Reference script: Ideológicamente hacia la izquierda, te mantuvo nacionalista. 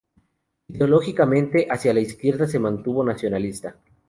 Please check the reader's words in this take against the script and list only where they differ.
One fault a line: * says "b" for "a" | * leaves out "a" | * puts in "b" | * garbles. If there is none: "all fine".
* says "se" for "te"